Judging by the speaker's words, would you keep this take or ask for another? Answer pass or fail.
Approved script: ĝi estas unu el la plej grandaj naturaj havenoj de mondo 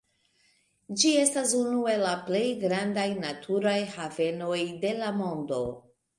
fail